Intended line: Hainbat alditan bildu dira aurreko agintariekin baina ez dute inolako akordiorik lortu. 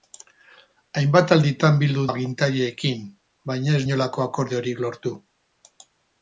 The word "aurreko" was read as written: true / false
false